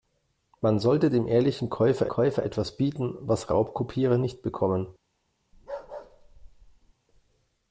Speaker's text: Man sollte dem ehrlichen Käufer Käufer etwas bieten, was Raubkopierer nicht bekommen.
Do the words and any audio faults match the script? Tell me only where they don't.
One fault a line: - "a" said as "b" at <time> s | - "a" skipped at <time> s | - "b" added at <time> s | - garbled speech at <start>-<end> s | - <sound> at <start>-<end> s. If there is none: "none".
- bark at 5.5-6.9 s